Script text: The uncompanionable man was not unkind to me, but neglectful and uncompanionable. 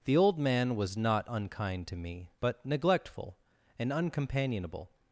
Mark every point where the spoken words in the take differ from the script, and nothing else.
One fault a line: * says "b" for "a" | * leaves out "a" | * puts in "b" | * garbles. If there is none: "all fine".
* says "old" for "uncompanionable"